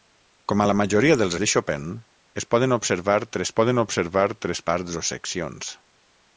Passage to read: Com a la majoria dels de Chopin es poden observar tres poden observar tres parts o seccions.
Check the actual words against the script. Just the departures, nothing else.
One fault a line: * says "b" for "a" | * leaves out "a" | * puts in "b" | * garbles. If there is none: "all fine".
all fine